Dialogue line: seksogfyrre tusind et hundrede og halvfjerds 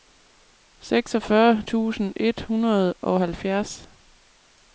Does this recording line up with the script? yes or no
yes